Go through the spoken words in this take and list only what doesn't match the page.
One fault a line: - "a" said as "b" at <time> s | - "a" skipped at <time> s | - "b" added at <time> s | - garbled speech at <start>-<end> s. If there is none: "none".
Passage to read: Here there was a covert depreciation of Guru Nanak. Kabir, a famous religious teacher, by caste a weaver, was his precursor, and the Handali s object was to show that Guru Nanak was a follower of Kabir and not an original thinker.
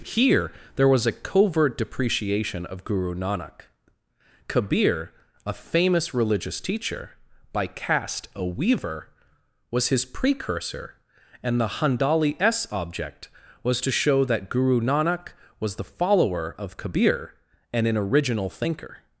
- "a" said as "the" at 15.8 s
- "not" skipped at 17.9 s